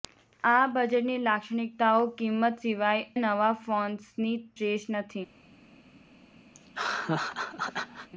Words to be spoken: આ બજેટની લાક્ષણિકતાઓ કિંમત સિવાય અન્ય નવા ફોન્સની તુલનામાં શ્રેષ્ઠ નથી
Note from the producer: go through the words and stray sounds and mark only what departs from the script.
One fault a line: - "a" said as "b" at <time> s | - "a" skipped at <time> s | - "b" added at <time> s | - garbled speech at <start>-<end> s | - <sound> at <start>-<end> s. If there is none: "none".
- "અન્ય" skipped at 3.0 s
- "તુલનામાં" skipped at 4.4 s
- laugh at 6.5-8.1 s